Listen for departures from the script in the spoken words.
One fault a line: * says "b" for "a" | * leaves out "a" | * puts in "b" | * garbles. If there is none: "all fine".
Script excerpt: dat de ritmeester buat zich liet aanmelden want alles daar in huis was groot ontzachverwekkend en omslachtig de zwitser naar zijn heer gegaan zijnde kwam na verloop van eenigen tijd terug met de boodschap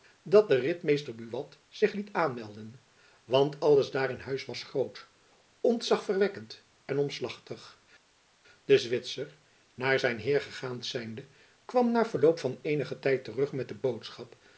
all fine